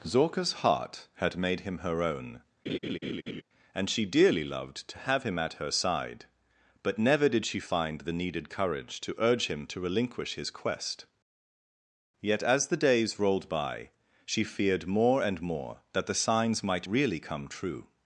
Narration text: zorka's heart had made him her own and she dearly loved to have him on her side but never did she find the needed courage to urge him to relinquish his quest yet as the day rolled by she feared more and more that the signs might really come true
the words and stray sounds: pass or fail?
fail